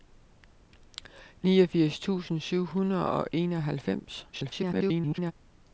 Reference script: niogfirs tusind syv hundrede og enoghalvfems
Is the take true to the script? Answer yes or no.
no